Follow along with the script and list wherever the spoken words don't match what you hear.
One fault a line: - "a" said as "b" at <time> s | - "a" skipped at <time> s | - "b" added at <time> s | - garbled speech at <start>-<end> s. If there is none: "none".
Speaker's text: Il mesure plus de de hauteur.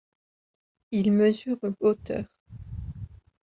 - "plus de de" skipped at 1.6 s